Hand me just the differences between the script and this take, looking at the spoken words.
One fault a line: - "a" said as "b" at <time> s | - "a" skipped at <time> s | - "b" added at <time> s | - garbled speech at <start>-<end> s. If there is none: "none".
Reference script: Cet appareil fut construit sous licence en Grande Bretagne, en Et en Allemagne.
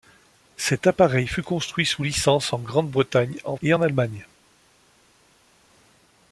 none